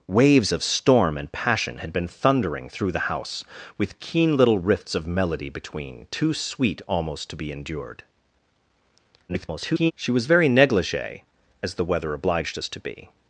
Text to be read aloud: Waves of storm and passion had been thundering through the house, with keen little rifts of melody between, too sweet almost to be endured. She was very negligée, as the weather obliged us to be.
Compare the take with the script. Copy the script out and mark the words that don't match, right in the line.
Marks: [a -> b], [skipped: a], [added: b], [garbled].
Waves of storm and passion had been thundering through the house, with keen little rifts of melody between, too sweet almost to be endured. [garbled] She was very negligée, as the weather obliged us to be.